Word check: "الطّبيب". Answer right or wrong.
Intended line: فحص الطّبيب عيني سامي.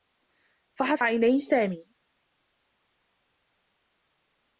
wrong